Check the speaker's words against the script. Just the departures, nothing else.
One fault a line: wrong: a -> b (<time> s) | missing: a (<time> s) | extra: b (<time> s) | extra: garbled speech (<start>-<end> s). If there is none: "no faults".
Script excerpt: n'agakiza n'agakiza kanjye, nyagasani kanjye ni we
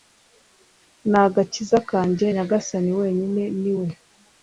missing: n'agakiza (1.8 s)
wrong: kanjye -> wenyine (3.0 s)